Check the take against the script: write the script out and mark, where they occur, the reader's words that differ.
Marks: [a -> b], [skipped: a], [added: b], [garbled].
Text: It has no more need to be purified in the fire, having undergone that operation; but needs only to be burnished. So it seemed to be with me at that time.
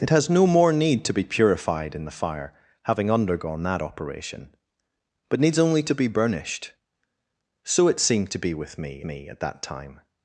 It has no more need to be purified in the fire, having undergone that operation; but needs only to be burnished. So it seemed to be with me [added: me] at that time.